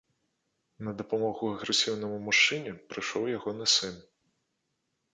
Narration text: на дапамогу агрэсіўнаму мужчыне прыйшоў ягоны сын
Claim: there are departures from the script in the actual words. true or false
false